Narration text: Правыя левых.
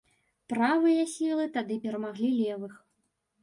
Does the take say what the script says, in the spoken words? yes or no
no